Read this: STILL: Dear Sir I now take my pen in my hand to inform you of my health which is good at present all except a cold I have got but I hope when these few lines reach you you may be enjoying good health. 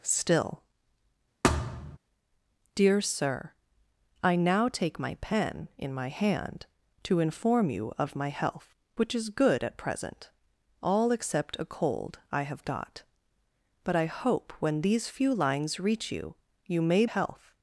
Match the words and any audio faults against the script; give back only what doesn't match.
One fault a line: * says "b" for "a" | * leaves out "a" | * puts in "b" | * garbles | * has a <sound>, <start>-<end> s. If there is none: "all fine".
* has a thud, 1.4-2.0 s
* leaves out "be enjoying good"